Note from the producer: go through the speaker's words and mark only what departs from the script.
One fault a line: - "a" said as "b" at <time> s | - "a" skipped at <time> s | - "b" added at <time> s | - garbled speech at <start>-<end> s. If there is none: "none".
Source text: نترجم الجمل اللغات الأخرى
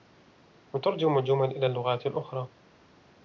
- "إلى" added at 1.5 s